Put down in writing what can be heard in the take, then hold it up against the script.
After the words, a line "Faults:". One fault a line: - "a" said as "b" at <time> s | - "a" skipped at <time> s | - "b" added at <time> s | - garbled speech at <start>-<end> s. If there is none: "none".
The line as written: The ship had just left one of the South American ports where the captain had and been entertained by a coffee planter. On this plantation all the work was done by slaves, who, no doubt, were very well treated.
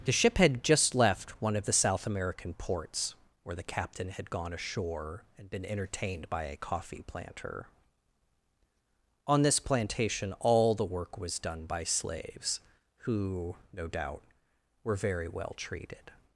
The ship had just left one of the South American ports where the captain had gone ashore and been entertained by a coffee planter. On this plantation all the work was done by slaves, who, no doubt, were very well treated.
Faults:
- "gone ashore" added at 4.3 s